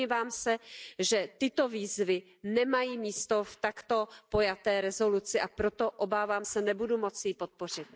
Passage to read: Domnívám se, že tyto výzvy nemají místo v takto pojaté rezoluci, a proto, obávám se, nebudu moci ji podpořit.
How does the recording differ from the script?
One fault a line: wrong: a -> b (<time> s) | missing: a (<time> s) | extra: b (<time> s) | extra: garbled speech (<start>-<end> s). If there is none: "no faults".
no faults